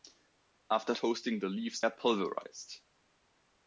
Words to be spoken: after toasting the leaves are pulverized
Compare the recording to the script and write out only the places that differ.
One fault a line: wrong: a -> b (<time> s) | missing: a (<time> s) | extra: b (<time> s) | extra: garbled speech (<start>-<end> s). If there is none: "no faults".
no faults